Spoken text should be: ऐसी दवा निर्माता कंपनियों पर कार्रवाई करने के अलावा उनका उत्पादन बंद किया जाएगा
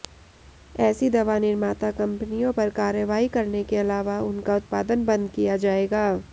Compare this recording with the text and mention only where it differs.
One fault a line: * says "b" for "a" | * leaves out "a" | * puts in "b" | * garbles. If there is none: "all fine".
all fine